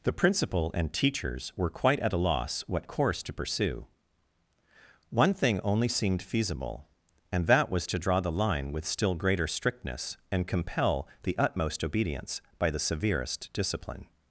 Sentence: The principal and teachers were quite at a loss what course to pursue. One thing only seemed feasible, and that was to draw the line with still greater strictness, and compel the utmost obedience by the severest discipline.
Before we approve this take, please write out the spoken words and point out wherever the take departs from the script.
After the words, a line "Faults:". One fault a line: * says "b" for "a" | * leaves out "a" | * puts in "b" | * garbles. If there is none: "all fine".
The principal and teachers were quite at a loss what course to pursue. One thing only seemed feasible, and that was to draw the line with still greater strictness, and compel the utmost obedience by the severest discipline.
Faults:
all fine